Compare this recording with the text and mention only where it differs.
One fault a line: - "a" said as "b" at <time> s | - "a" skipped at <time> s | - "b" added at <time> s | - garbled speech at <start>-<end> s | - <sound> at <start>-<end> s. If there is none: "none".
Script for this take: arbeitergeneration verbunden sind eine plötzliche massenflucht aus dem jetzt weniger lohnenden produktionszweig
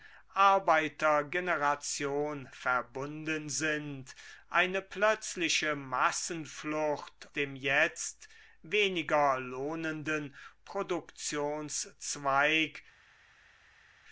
- "aus" skipped at 7.3 s